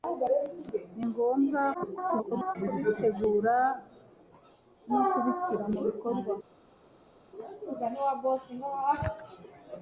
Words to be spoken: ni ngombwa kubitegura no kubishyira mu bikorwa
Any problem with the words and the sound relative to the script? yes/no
yes